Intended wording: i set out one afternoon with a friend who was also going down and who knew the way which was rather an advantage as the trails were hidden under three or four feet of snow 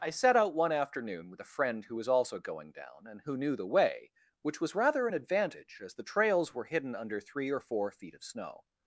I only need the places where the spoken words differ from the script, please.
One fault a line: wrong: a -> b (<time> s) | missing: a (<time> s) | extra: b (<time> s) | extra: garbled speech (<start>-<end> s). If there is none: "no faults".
no faults